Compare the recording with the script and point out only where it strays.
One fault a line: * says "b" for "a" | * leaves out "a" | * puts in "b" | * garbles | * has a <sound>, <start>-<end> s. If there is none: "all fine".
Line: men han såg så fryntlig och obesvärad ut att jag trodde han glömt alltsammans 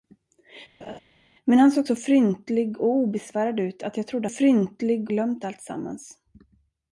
* has a laugh, 0.8-1.0 s
* says "fryntlig" for "han"